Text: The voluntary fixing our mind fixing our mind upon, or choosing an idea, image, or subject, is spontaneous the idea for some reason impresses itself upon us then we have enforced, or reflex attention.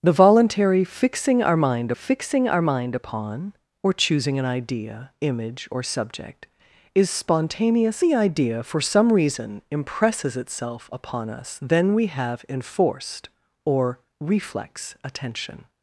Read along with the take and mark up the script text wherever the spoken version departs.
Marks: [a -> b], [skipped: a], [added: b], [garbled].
The voluntary fixing our mind fixing our mind upon, or choosing an idea, image, or subject, is spontaneous the idea for some reason impresses itself upon us then we have enforced, or reflex attention.